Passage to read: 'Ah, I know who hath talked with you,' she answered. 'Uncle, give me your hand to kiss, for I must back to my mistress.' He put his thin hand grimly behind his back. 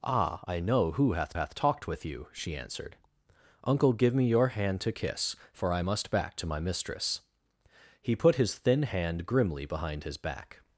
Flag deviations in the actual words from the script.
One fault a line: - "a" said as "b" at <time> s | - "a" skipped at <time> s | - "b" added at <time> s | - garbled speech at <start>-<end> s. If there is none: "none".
- "hath" added at 1.3 s